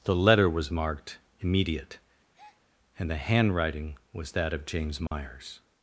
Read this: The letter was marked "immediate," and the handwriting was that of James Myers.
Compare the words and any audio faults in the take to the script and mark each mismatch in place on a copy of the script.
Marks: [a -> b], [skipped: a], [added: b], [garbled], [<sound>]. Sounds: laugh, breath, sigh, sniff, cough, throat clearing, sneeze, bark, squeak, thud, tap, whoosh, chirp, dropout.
The letter was marked "immediate," [breath] and the handwriting was that of James Myers. [dropout]